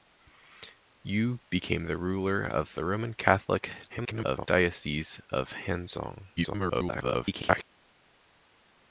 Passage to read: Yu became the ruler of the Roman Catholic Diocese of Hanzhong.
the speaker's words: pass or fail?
fail